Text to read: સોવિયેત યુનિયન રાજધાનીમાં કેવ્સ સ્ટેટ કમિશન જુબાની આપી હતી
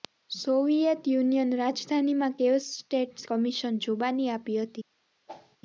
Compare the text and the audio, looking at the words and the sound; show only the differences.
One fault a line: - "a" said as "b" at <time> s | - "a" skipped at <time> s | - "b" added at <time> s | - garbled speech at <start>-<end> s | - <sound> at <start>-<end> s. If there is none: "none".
- whoosh at 5.3-5.6 s